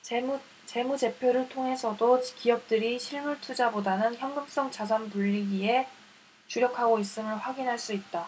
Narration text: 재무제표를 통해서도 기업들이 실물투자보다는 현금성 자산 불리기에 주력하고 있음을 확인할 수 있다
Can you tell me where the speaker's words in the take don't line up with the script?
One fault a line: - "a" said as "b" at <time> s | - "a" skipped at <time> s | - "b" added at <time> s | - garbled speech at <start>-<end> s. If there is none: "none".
none